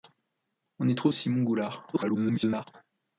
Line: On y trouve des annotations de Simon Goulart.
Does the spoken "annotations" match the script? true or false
false